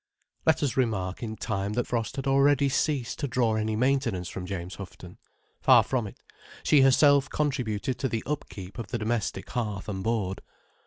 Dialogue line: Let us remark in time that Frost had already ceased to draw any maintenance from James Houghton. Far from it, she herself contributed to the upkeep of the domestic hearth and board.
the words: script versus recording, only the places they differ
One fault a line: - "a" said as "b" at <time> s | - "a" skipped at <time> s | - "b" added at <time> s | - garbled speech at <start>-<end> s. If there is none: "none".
none